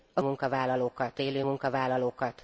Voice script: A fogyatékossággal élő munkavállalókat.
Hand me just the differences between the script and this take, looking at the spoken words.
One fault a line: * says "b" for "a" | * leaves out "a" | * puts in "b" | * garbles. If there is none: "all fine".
* says "munkavállalókat" for "fogyatékossággal"